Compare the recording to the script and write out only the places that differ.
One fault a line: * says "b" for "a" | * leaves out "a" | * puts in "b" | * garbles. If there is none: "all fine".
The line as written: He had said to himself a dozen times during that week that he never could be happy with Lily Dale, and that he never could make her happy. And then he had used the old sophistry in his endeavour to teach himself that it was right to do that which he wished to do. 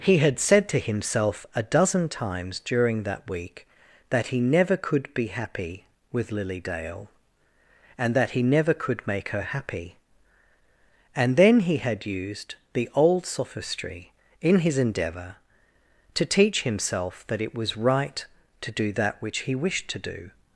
all fine